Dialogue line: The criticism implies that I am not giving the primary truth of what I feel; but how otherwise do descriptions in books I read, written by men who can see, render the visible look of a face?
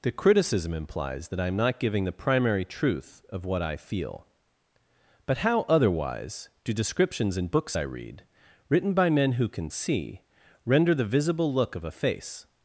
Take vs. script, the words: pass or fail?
pass